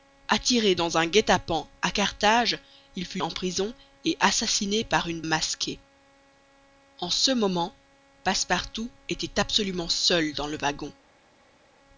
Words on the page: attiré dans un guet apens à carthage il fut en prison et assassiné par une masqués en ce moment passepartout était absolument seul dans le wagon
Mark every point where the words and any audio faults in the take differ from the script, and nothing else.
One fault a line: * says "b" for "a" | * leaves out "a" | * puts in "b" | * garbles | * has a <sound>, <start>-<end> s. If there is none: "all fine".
all fine